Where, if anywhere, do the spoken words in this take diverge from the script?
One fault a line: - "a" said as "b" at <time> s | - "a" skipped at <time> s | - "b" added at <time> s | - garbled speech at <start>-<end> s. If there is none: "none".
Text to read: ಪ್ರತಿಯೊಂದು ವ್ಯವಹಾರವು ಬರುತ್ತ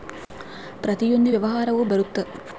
none